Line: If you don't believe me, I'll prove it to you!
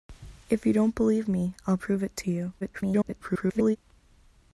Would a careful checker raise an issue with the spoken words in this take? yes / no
yes